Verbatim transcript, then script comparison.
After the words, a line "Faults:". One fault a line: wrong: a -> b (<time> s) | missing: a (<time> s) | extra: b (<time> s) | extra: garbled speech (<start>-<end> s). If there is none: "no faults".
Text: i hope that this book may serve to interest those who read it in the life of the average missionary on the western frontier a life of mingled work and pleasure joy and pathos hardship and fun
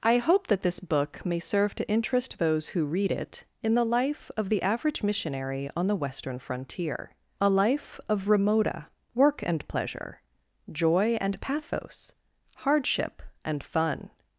i hope that this book may serve to interest those who read it in the life of the average missionary on the western frontier a life of remota work and pleasure joy and pathos hardship and fun
Faults:
wrong: mingled -> remota (8.3 s)